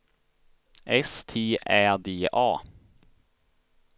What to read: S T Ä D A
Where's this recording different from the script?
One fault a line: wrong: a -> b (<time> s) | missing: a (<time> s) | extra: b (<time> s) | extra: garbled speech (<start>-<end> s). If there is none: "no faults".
no faults